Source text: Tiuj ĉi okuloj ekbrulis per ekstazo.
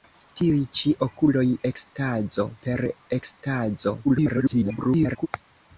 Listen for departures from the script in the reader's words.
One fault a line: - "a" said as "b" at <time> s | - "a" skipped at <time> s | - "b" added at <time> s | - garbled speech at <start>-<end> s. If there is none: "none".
- "ekbrulis" said as "ekstazo" at 1.7 s
- garbled speech at 4.0-5.3 s